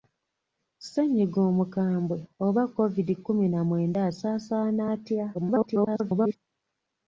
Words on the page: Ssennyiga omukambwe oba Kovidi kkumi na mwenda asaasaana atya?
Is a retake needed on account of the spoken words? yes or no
yes